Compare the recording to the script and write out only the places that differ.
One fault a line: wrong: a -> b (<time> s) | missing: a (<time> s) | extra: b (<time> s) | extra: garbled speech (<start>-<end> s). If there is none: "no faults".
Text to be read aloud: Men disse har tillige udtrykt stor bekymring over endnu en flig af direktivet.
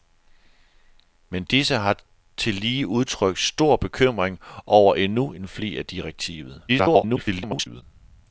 extra: garbled speech (6.7-7.8 s)